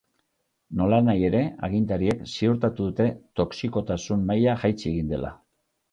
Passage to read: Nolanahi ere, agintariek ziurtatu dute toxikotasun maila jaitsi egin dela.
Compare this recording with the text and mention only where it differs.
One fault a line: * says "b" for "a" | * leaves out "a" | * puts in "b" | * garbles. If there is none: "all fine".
all fine